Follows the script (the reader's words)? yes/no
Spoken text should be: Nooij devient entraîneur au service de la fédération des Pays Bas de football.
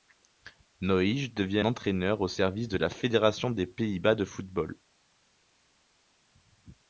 yes